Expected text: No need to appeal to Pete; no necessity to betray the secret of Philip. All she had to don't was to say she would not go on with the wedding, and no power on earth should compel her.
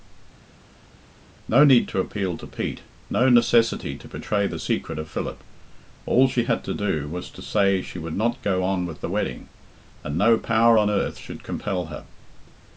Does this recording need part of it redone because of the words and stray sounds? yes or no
yes